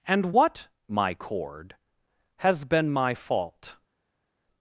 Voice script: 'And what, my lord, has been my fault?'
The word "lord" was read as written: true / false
false